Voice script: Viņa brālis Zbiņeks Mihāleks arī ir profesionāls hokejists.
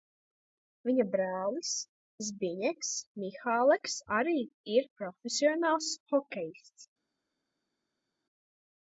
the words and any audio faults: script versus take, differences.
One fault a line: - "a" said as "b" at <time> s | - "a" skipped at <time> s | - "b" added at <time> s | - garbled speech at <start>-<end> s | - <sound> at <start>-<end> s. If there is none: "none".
none